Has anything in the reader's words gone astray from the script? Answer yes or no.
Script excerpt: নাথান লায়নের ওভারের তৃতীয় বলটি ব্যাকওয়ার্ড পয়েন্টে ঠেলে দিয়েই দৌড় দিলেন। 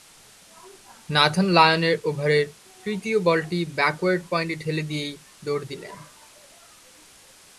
no